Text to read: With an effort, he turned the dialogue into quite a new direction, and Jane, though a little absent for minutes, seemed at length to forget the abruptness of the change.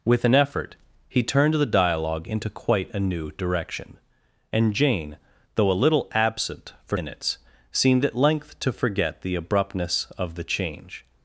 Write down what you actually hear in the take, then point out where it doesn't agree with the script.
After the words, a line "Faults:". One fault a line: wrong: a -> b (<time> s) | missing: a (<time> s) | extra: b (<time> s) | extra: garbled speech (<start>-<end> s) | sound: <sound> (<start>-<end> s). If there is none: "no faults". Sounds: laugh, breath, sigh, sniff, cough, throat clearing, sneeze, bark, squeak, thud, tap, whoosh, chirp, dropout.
With an effort, he turned the dialogue into quite a new direction, and Jane, though a little absent for minutes, seemed at length to forget the abruptness of the change.
Faults:
no faults